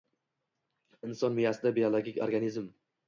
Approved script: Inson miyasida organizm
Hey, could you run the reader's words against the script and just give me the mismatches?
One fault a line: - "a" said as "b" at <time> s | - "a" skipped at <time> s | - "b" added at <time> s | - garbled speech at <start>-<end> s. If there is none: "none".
- "biologik" added at 1.8 s